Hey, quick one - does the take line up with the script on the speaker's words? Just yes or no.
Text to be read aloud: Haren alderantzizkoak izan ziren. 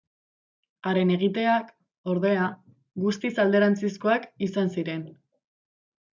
no